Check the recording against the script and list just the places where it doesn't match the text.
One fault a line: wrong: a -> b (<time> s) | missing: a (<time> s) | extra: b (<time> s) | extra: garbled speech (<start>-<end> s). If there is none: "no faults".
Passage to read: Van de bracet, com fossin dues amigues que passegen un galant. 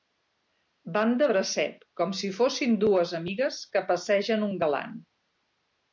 extra: si (2.2 s)